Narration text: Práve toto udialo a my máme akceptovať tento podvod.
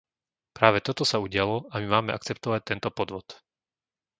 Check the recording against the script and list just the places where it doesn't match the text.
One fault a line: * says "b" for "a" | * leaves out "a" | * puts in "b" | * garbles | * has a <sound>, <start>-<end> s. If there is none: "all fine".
* puts in "sa"